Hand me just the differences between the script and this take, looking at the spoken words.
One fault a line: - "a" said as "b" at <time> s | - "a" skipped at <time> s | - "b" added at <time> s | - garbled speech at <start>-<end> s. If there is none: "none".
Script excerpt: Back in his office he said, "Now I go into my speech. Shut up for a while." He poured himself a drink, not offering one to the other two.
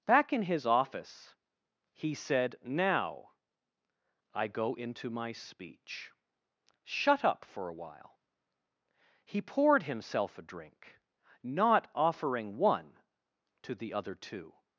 none